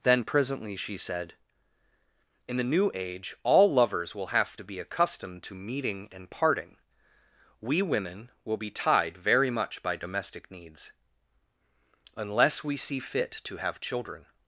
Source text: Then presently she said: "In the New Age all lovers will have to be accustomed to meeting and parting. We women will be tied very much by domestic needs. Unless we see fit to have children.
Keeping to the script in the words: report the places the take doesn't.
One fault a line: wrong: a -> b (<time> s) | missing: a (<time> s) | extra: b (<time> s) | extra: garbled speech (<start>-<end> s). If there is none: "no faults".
no faults